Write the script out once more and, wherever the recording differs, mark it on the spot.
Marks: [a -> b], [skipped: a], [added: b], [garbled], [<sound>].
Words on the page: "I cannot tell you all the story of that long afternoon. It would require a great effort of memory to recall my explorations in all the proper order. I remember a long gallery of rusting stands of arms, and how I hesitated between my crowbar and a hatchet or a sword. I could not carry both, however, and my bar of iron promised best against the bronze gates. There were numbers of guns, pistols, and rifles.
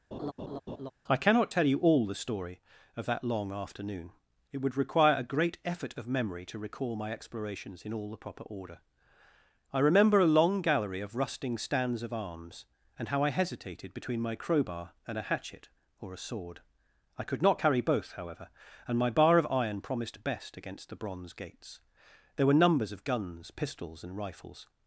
[laugh] "I cannot tell you all the story of that long afternoon. It would require a great effort of memory to recall my explorations in all the proper order. I remember a long gallery of rusting stands of arms, and how I hesitated between my crowbar and a hatchet or a sword. I could not carry both, however, and my bar of iron promised best against the bronze gates. There were numbers of guns, pistols, and rifles.